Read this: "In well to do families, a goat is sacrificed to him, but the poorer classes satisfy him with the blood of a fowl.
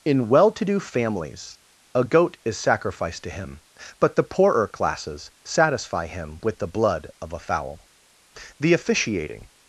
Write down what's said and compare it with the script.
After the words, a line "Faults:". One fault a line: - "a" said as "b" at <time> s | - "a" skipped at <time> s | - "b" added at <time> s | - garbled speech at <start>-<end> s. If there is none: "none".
"In well to do families, a goat is sacrificed to him, but the poorer classes satisfy him with the blood of a fowl. The officiating
Faults:
- "The officiating" added at 8.6 s